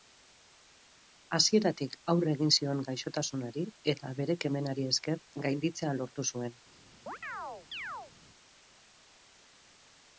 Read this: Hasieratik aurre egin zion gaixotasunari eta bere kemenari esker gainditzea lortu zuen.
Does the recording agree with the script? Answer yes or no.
yes